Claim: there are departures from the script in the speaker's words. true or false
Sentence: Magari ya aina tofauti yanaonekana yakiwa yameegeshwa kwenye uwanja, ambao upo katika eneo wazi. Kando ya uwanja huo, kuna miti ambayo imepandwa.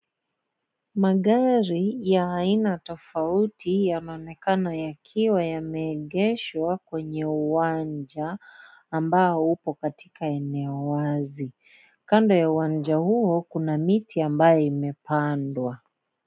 false